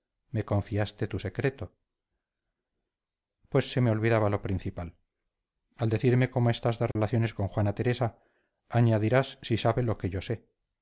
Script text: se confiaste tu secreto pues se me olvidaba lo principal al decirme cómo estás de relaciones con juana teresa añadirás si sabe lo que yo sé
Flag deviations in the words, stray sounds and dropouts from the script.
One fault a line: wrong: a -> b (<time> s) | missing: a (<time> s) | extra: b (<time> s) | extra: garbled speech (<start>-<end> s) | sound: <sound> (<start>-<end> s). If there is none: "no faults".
wrong: se -> me (0.3 s)
sound: dropout (6.9-7.0 s)